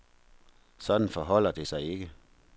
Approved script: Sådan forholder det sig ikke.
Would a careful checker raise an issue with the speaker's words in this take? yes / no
no